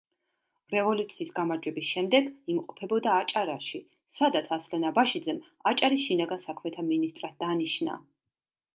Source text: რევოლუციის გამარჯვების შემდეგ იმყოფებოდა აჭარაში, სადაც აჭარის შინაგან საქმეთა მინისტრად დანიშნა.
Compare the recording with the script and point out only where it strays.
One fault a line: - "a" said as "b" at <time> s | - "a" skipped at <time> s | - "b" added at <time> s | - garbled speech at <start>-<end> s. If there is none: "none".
- "ასლან აბაშიძემ" added at 4.6 s